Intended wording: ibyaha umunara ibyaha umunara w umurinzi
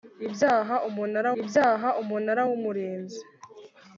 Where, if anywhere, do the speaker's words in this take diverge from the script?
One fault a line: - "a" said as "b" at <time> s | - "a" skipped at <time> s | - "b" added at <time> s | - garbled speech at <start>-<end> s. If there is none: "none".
none